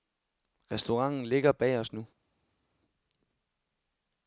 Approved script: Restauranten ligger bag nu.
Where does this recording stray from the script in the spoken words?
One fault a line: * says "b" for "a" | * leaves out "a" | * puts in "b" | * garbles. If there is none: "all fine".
* puts in "os"